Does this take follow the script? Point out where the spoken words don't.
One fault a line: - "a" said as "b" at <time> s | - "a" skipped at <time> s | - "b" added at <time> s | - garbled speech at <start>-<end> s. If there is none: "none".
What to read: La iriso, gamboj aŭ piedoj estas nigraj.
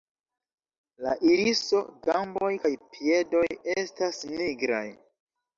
- "aŭ" said as "kaj" at 2.6 s